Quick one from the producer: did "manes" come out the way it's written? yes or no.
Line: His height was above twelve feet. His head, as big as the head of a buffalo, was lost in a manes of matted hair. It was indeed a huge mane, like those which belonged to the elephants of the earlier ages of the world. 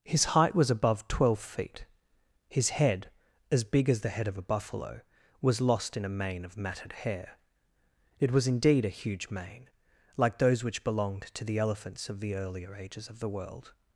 no